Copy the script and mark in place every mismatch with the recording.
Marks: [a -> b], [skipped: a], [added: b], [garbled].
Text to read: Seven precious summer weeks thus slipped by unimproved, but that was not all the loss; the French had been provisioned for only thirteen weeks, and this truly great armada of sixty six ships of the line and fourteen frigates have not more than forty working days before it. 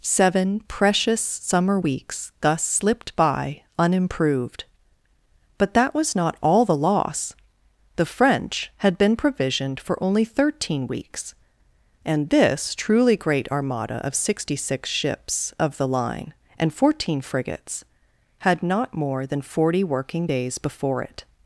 Seven precious summer weeks thus slipped by unimproved, but that was not all the loss; the French had been provisioned for only thirteen weeks, and this truly great armada of sixty six ships of the line and fourteen frigates [have -> had] not more than forty working days before it.